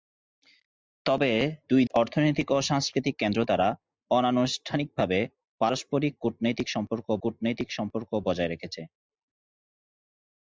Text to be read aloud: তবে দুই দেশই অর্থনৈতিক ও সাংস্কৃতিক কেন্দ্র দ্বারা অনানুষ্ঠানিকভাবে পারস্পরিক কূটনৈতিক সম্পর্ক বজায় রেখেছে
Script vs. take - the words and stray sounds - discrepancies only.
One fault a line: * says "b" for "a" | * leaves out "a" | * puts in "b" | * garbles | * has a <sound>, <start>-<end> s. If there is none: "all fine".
* leaves out "দেশই"
* puts in "কূটনৈতিক সম্পর্ক"